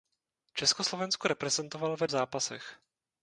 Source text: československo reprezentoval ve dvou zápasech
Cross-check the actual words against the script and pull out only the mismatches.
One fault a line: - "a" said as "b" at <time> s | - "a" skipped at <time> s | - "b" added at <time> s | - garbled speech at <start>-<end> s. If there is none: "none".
- "dvou" skipped at 2.1 s